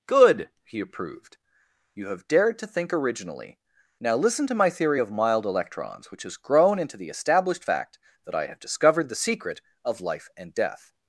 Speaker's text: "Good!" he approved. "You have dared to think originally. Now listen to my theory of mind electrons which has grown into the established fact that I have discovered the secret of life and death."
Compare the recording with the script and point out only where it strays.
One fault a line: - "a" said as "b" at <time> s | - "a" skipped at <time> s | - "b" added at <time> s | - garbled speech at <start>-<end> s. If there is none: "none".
- "mind" said as "mild" at 5.1 s